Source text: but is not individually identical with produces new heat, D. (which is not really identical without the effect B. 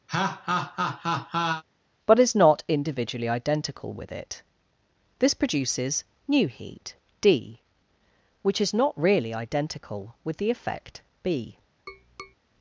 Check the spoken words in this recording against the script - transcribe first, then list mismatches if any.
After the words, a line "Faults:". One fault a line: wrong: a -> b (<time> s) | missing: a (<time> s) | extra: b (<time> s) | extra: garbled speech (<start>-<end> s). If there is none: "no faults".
but is not individually identical with it), this produces new heat, D. (which is not really identical with the effect B.
Faults:
extra: it this (4.1 s)
wrong: without -> with (10.2 s)